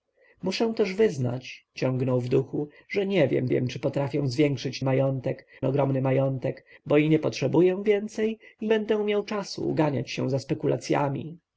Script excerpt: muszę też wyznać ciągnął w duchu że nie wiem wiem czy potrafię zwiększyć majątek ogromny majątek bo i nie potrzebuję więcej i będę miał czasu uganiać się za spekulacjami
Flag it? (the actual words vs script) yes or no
no